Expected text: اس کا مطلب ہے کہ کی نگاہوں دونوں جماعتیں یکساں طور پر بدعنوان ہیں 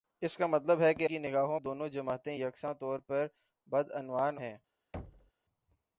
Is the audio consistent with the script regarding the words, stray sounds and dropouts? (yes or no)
no